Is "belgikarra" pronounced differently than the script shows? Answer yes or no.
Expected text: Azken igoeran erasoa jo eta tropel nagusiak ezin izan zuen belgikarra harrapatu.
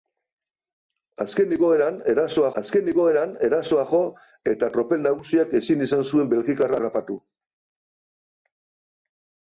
no